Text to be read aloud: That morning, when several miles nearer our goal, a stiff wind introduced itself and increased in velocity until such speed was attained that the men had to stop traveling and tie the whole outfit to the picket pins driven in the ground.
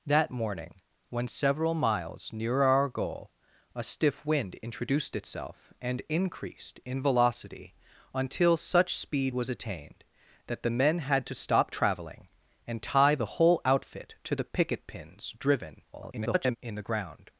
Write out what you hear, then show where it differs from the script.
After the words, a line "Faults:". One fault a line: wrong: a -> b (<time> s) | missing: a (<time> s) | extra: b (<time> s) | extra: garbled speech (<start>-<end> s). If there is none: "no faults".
That morning, when several miles nearer our goal, a stiff wind introduced itself and increased in velocity until such speed was attained that the men had to stop traveling and tie the whole outfit to the picket pins driven [garbled] in the ground.
Faults:
extra: garbled speech (15.9-16.6 s)